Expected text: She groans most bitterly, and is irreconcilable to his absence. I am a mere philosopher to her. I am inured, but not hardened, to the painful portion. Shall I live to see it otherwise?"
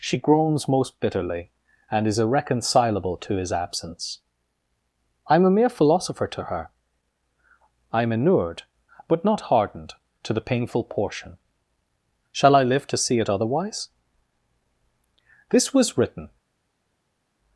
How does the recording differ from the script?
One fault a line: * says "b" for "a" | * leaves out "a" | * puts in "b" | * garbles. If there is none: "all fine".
* puts in "This was written"